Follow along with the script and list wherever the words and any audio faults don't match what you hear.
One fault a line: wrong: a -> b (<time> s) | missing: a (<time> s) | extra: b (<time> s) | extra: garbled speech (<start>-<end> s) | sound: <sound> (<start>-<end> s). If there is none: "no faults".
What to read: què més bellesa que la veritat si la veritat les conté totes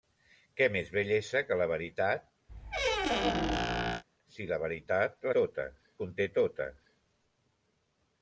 sound: squeak (2.5-4.0 s)
wrong: les -> totes (5.4 s)